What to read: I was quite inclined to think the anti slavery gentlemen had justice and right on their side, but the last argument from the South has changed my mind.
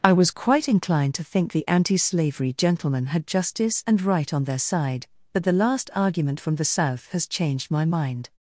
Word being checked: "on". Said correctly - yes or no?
yes